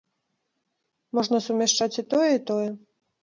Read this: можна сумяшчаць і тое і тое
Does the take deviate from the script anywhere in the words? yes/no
no